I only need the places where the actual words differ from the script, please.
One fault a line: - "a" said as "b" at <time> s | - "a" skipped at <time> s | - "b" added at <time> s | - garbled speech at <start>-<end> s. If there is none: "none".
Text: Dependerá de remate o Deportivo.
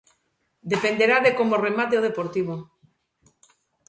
- "como" added at 1.4 s